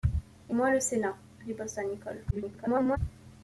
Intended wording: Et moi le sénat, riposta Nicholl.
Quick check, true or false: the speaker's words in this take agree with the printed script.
false